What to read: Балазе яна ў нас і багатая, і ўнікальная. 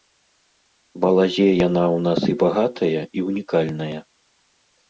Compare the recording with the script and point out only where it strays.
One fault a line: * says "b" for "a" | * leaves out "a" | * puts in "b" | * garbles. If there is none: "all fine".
all fine